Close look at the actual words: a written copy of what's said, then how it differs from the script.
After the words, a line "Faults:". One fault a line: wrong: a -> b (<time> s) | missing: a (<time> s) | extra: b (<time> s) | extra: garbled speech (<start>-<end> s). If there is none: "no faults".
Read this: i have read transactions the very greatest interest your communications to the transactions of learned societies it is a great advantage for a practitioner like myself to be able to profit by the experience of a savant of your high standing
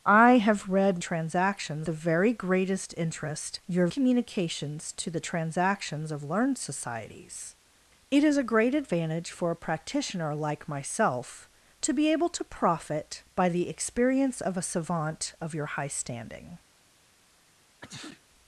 i have read transactions the very greatest interest your communications to the transactions of learned societies it is a great advantage for a practitioner like myself to be able to profit by the experience of a savant of your high standing
Faults:
no faults